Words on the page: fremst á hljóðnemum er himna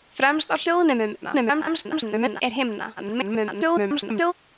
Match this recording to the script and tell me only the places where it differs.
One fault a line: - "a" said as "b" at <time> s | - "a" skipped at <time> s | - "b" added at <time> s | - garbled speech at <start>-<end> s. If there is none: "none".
- garbled speech at 1.2-2.4 s
- garbled speech at 3.0-4.3 s